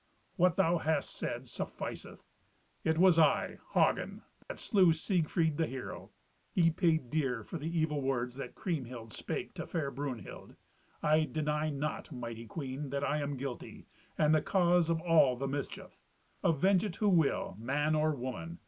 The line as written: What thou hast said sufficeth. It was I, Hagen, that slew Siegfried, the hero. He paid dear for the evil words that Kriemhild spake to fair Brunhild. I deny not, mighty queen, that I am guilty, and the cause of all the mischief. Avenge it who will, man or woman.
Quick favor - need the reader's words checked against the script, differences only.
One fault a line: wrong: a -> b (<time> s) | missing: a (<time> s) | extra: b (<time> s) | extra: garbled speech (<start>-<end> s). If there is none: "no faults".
no faults